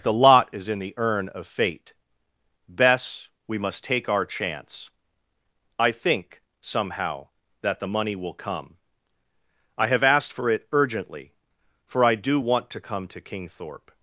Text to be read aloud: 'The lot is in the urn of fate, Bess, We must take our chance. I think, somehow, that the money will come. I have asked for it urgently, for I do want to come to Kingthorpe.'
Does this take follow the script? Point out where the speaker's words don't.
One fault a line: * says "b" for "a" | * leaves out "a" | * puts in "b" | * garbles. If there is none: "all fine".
all fine